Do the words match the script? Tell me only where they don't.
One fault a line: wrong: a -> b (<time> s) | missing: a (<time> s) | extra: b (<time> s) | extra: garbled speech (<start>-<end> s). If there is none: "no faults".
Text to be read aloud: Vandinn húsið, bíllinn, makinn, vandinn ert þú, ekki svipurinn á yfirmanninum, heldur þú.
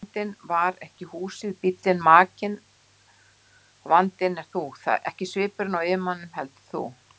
extra: var ekki (0.5 s)